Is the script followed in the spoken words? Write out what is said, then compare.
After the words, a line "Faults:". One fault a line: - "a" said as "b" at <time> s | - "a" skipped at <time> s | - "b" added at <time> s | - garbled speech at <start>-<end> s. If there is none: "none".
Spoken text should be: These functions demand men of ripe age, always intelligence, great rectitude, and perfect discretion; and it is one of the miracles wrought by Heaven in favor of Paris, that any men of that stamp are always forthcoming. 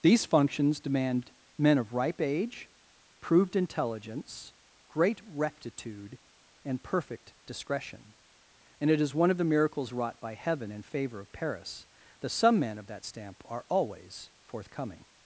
These functions demand men of ripe age, proved intelligence, great rectitude, and perfect discretion; and it is one of the miracles wrought by Heaven in favor of Paris, that some men of that stamp are always forthcoming.
Faults:
- "always" said as "proved" at 3.2 s
- "any" said as "some" at 12.3 s